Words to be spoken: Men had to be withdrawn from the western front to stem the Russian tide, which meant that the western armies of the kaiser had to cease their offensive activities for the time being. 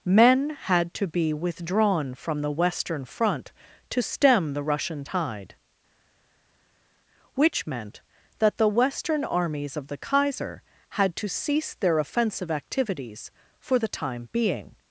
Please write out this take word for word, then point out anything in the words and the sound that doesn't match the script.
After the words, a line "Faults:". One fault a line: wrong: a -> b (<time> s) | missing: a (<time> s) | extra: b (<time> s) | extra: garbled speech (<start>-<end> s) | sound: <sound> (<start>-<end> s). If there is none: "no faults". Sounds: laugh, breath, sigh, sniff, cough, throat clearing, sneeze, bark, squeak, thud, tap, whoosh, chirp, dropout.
Men had to be withdrawn from the western front to stem the Russian tide, which meant that the western armies of the kaiser had to cease their offensive activities for the time being.
Faults:
no faults